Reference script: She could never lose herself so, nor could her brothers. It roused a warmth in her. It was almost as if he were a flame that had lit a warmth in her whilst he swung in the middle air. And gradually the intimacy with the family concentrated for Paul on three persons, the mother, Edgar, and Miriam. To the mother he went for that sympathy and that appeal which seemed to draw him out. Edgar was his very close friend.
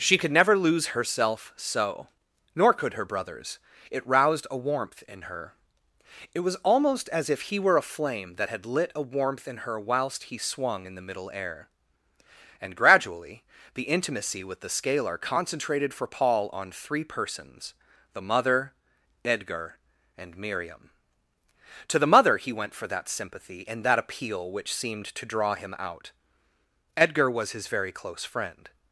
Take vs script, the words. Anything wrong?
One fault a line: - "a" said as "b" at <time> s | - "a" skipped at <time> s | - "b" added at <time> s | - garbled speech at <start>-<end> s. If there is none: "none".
- "family" said as "scalar" at 14.7 s